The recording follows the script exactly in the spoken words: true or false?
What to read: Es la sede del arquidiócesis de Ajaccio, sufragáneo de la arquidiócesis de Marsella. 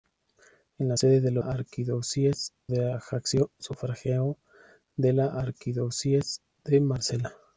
true